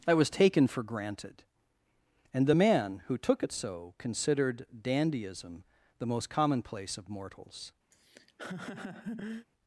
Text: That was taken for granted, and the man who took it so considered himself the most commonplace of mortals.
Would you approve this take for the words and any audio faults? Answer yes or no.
no